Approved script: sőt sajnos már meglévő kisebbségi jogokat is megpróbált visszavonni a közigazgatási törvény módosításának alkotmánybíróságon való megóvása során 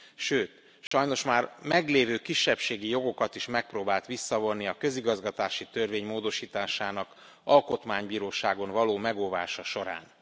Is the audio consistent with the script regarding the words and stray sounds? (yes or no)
no